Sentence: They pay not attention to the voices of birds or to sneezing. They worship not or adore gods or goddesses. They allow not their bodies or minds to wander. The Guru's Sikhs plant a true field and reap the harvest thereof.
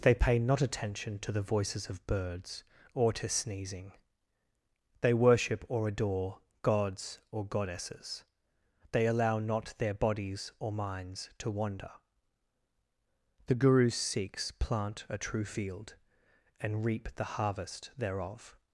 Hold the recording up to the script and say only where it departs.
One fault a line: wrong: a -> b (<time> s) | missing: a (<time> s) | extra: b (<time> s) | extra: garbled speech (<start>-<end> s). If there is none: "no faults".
missing: not (5.6 s)